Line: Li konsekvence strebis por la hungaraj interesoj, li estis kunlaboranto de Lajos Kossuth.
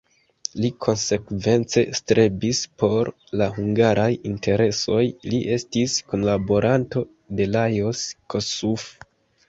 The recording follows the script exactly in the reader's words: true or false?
true